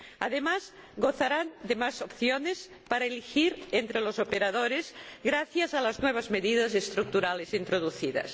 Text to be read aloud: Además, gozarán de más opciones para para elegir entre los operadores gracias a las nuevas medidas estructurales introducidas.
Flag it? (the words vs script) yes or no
yes